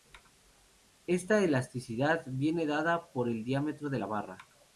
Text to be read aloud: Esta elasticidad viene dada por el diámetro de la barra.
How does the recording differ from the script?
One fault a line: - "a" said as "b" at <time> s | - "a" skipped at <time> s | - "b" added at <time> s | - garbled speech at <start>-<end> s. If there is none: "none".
none